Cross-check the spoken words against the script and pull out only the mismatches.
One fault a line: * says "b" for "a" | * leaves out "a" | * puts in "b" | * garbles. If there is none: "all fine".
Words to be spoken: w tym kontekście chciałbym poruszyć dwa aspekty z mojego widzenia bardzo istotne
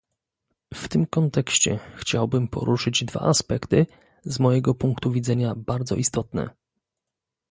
* puts in "punktu"